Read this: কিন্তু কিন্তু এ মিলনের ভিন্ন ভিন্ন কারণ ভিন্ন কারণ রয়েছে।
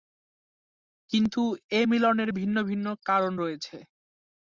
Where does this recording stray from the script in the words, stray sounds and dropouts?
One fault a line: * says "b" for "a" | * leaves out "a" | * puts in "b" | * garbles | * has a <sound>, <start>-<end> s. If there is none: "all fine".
* leaves out "কিন্তু"
* leaves out "ভিন্ন কারণ"